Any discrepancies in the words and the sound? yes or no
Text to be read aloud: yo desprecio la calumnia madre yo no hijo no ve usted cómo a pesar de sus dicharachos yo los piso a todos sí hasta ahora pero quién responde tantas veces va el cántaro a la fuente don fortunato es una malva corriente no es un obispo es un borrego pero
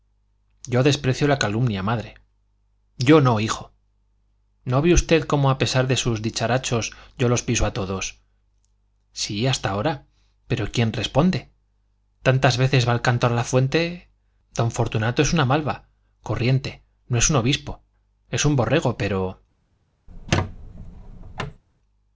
yes